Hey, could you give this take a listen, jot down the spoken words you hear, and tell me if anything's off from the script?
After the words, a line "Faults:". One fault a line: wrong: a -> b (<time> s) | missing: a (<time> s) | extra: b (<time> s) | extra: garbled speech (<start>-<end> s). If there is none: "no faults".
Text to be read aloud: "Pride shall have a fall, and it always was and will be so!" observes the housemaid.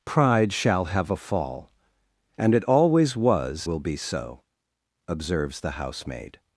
"Pride shall have a fall, and it always was will be so!" observes the housemaid.
Faults:
missing: and (3.7 s)